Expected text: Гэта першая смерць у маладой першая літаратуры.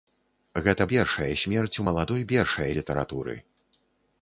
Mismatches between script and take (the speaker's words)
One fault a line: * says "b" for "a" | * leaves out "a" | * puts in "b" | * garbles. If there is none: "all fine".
all fine